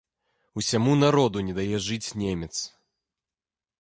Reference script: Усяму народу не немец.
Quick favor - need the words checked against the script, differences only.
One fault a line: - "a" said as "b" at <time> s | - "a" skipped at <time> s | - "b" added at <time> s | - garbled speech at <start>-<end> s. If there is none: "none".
- "дае жыць" added at 1.6 s